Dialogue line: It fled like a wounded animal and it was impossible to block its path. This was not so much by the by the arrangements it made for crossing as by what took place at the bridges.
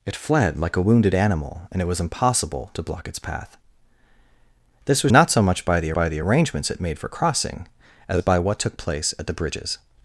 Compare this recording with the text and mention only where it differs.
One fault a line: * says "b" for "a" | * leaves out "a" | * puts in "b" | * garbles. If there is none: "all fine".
all fine